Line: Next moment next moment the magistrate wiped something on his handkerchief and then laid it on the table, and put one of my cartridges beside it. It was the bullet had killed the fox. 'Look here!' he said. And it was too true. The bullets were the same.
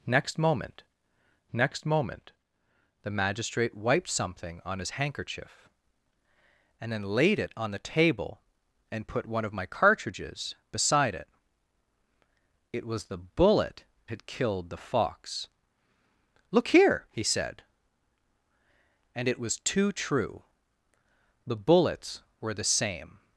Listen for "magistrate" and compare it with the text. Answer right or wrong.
right